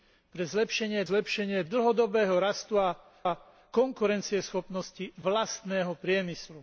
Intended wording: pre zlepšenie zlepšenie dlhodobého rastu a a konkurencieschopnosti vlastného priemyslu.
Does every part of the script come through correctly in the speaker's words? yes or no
yes